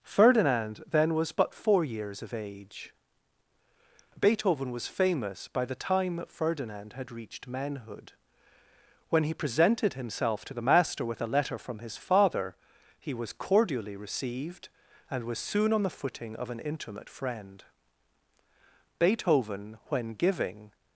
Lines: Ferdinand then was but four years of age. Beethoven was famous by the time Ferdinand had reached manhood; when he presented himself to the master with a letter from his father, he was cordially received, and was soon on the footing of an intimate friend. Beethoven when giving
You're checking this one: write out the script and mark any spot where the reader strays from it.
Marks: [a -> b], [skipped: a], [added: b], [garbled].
Ferdinand then was but four years of age. Beethoven was famous by the time Ferdinand had reached manhood; when he presented himself to the master with a letter from his father, he was cordially received, and was soon on the footing of an intimate friend. Beethoven when giving